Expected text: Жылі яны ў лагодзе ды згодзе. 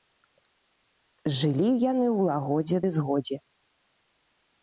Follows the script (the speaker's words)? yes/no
yes